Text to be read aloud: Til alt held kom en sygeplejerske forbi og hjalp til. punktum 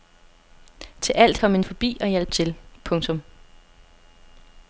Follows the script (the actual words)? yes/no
no